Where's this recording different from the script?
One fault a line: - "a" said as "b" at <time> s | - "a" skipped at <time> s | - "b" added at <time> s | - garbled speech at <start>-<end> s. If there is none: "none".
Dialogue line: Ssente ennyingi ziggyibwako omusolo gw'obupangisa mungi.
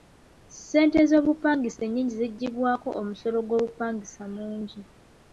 - "z'obupangisa" added at 1.1 s